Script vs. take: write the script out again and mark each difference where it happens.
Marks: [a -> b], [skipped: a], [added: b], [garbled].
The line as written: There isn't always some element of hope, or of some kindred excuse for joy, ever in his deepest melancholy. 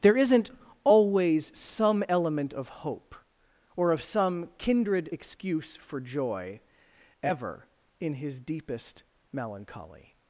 There isn't always some element of hope, or of some kindred excuse for joy, ever in his deepest melancholy.